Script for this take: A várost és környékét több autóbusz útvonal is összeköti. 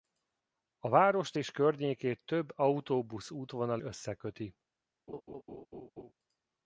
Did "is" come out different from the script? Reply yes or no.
yes